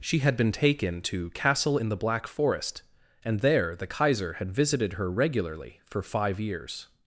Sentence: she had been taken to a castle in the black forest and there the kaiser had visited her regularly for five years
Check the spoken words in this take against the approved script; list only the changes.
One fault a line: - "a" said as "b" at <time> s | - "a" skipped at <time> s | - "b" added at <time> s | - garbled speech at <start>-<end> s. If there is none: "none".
- "a" skipped at 1.3 s